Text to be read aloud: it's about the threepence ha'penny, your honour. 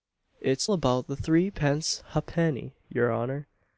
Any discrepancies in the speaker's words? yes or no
no